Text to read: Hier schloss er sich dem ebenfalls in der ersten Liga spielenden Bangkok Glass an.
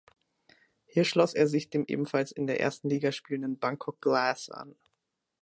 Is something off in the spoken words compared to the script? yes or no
no